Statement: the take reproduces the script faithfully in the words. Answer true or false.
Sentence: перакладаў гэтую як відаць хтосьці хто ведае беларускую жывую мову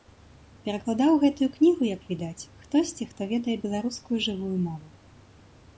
false